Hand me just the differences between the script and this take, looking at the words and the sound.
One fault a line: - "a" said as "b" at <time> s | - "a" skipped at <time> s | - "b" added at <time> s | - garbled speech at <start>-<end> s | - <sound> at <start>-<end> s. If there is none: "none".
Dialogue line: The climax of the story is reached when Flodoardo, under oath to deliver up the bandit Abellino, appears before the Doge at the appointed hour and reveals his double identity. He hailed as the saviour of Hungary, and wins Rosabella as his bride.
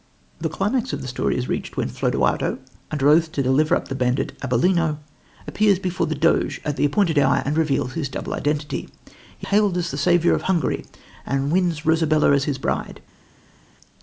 none